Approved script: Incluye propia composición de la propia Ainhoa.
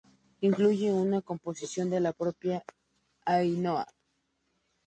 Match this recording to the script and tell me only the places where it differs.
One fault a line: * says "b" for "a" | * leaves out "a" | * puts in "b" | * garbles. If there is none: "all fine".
* says "una" for "propia"